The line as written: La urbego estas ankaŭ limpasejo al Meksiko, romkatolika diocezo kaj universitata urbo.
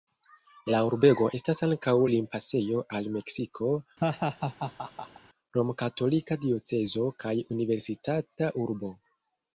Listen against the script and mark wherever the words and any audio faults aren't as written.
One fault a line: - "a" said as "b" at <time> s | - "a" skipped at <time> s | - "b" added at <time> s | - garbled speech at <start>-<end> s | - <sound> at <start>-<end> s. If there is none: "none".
- laugh at 4.0-5.2 s